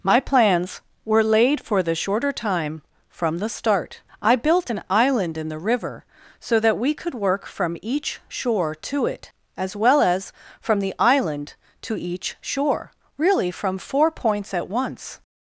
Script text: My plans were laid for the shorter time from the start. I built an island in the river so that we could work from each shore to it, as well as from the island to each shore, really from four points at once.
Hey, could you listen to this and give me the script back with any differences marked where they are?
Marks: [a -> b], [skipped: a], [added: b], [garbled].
My plans were laid for the shorter time from the start. I built an island in the river so that we could work from each shore to it, as well as from the island to each shore, really from four points at once.